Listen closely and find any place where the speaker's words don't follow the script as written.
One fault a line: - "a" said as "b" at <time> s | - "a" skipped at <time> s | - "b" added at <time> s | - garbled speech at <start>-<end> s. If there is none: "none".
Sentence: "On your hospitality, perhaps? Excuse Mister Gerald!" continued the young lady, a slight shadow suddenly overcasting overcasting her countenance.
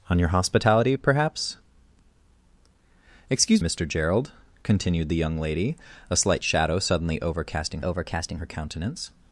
none